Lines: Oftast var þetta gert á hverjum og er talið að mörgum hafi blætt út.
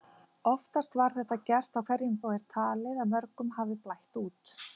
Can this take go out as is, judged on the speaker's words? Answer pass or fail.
pass